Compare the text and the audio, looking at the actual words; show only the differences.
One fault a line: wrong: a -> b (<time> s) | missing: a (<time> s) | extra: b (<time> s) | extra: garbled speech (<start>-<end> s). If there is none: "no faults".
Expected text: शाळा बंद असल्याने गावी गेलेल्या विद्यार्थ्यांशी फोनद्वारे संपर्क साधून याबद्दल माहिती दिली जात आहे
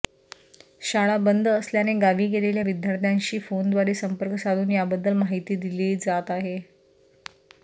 no faults